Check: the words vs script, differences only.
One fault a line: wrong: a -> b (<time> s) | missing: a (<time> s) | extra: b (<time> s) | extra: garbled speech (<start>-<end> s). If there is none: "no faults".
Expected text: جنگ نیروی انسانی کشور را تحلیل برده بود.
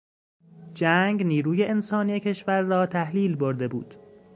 no faults